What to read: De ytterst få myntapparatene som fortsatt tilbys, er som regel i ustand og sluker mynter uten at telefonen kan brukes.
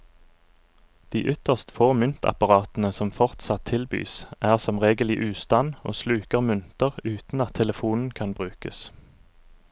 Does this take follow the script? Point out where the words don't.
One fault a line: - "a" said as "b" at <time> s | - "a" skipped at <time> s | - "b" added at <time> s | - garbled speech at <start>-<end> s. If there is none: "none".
none